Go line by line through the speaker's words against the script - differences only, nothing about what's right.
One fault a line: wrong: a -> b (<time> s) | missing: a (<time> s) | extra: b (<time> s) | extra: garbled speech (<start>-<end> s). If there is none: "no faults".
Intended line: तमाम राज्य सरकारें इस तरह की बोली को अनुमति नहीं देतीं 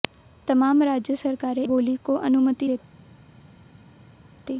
missing: इस तरह की (1.6 s)
missing: नहीं (2.7 s)